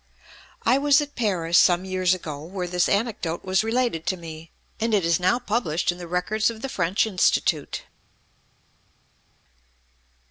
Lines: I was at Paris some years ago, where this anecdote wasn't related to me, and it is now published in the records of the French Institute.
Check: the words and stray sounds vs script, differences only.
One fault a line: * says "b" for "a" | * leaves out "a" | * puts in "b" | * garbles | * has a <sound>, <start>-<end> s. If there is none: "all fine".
* says "was" for "wasn't"